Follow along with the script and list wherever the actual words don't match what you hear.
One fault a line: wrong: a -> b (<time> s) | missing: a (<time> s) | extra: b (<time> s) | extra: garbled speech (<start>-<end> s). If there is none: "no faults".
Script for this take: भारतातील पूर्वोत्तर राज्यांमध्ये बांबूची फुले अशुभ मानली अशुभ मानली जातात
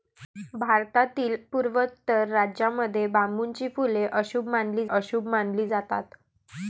no faults